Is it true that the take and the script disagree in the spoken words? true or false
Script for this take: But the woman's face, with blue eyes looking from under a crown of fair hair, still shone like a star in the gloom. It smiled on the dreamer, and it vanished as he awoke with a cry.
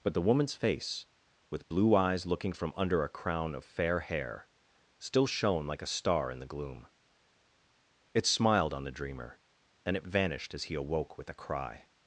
false